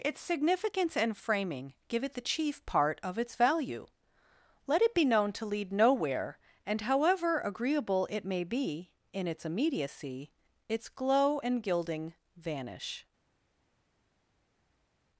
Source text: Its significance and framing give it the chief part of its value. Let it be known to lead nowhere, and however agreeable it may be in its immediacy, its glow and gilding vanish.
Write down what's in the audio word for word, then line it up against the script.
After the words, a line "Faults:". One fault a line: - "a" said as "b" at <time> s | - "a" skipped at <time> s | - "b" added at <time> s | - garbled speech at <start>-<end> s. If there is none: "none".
Its significance and framing give it the chief part of its value. Let it be known to lead nowhere, and however agreeable it may be in its immediacy, its glow and gilding vanish.
Faults:
none